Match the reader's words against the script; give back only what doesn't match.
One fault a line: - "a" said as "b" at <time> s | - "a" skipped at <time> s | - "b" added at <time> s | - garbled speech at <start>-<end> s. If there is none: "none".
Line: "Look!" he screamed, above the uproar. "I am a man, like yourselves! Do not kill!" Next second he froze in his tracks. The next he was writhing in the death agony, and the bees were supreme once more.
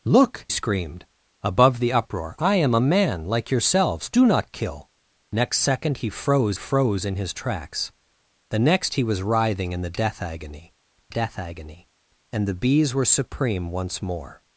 - "he" skipped at 0.5 s
- "froze" added at 6.5 s
- "death agony" added at 11.1 s